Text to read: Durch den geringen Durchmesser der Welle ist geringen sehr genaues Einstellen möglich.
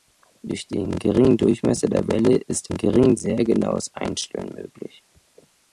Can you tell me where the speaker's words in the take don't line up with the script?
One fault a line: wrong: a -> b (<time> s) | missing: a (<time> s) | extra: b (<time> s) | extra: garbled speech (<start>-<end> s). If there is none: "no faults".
no faults